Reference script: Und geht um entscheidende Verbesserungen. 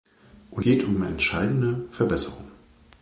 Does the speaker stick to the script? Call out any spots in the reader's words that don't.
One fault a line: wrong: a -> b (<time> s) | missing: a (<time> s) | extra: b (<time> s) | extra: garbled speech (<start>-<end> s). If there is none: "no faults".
no faults